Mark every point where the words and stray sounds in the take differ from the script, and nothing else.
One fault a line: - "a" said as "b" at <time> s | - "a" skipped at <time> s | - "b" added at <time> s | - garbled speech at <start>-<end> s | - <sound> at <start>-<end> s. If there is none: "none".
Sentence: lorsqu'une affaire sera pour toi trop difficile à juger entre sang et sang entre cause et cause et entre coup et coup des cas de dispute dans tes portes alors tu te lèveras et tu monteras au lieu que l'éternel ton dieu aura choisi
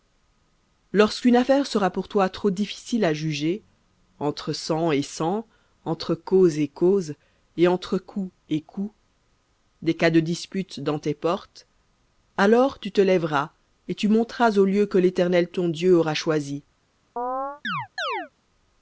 - chirp at 17.2-18.3 s